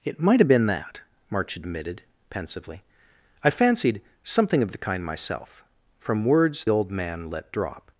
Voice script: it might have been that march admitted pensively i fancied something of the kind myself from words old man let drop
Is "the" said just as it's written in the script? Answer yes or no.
yes